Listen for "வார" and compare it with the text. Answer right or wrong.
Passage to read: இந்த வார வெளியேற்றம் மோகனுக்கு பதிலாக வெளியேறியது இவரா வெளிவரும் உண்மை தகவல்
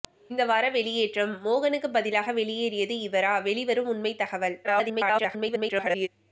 right